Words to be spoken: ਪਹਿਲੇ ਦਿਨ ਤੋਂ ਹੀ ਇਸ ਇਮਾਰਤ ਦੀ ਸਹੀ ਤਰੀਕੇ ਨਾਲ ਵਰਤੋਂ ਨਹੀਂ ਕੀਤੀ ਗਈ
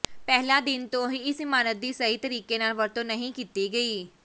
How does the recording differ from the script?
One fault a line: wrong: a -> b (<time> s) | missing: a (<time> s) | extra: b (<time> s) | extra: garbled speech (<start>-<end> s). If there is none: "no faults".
no faults